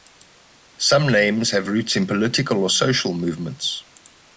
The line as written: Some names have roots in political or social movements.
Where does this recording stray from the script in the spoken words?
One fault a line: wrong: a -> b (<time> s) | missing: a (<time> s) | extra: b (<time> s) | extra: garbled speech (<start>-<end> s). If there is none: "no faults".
no faults